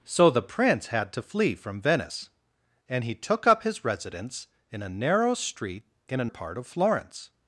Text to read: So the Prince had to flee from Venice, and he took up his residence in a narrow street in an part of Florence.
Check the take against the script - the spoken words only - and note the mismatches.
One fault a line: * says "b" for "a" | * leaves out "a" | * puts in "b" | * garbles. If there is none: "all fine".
all fine